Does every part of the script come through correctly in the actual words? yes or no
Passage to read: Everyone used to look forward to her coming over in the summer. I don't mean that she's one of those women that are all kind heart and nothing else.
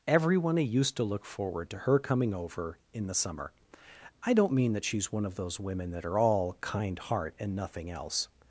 yes